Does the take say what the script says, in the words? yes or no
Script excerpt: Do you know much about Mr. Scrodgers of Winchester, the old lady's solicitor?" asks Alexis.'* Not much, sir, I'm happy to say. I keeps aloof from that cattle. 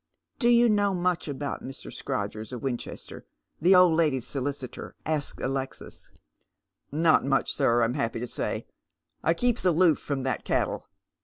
yes